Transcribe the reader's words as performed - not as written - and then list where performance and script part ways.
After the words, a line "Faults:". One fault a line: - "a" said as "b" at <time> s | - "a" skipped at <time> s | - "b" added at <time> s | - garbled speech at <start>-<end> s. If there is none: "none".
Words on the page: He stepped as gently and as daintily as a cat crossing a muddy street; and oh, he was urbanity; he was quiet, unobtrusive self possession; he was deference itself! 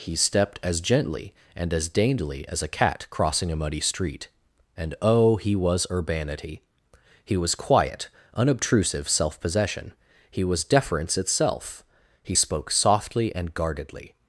He stepped as gently and as daintily as a cat crossing a muddy street; and oh, he was urbanity; he was quiet, unobtrusive self possession; he was deference itself! He spoke softly and guardedly
Faults:
- "He spoke softly and guardedly" added at 12.2 s